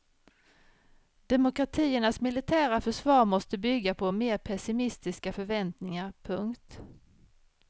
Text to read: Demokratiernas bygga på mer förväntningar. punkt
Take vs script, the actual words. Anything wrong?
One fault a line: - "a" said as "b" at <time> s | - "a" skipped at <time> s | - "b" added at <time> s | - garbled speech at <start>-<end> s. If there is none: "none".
- "militära försvar måste" added at 2.2 s
- "pessimistiska" added at 4.4 s